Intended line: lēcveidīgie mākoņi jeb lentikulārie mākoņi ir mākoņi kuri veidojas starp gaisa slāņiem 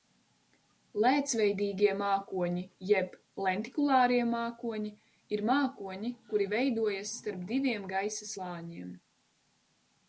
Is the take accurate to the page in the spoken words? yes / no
no